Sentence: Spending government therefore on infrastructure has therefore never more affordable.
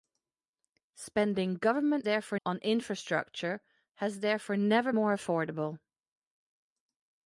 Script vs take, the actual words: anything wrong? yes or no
no